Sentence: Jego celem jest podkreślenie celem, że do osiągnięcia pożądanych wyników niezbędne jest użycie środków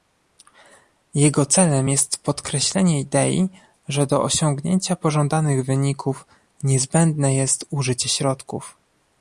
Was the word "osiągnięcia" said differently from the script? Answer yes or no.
no